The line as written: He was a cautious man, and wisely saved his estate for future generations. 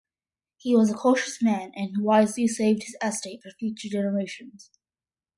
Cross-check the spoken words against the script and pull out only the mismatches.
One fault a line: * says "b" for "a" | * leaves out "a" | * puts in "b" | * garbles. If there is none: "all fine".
all fine